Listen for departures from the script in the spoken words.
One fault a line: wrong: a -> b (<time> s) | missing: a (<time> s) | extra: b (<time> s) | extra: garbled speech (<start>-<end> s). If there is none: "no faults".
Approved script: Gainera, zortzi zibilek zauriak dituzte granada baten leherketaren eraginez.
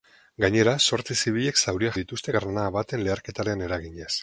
no faults